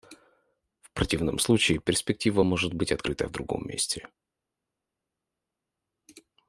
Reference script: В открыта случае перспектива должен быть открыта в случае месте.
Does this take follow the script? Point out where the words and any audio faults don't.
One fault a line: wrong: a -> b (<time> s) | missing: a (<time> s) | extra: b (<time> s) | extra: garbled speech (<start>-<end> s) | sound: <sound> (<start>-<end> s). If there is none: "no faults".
wrong: открыта -> противном (0.9 s)
wrong: должен -> может (2.4 s)
wrong: случае -> другом (3.3 s)